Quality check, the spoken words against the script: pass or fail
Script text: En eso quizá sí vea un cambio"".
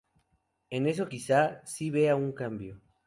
pass